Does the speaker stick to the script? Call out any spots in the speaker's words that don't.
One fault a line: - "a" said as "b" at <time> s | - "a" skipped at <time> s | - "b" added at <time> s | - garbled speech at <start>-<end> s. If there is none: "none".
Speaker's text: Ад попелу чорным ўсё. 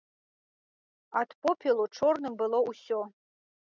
- "было" added at 2.5 s